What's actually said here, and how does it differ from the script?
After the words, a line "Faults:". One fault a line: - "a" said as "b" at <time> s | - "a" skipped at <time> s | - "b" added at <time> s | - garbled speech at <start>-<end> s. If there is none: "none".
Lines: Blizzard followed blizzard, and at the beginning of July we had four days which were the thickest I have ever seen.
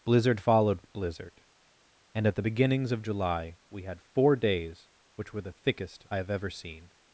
Blizzard followed blizzard, and at the beginnings of July we had four days which were the thickest I have ever seen.
Faults:
- "beginning" said as "beginnings" at 2.4 s